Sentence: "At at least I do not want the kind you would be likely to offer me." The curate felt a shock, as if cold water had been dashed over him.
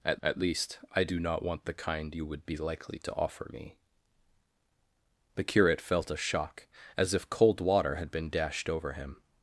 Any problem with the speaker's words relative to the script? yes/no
no